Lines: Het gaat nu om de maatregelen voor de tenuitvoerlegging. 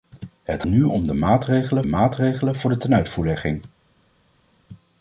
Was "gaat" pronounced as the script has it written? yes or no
no